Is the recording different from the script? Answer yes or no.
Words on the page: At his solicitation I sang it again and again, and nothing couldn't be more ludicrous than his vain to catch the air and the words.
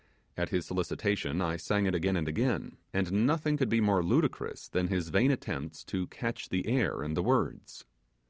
yes